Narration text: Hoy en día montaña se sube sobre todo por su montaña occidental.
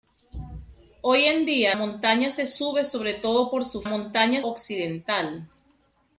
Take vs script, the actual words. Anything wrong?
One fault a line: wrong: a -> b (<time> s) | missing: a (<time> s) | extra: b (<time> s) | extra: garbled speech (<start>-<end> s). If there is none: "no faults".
no faults